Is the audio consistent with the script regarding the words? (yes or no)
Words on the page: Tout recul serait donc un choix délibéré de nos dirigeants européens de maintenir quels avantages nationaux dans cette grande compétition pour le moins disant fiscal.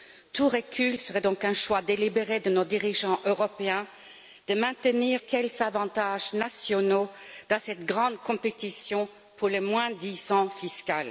yes